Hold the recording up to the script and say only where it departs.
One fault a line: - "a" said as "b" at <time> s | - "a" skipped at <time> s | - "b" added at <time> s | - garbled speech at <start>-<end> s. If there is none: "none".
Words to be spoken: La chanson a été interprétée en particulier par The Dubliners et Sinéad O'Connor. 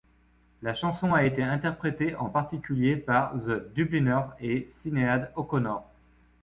none